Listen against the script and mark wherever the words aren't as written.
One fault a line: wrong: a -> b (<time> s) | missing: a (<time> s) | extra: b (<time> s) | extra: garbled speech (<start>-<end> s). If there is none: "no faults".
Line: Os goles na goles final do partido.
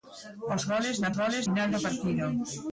no faults